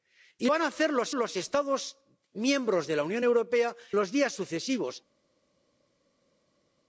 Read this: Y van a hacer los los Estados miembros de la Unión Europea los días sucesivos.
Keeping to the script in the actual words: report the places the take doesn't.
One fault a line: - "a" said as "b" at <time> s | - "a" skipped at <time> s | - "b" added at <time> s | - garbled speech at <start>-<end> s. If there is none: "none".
none